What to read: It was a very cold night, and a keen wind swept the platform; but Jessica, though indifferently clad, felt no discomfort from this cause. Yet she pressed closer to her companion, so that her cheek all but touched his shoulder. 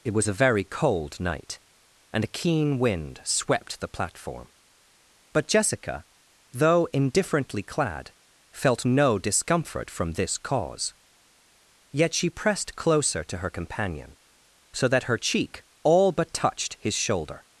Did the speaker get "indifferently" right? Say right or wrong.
right